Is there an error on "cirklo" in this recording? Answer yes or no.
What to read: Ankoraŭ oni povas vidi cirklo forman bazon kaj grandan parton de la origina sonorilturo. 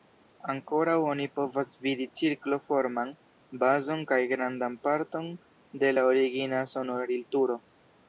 no